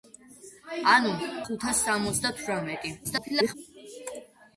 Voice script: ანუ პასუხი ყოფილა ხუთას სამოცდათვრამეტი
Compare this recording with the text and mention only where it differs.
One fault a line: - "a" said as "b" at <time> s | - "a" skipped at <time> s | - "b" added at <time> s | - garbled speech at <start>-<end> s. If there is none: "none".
- "პასუხი ყოფილა" skipped at 1.1 s
- garbled speech at 3.0-3.5 s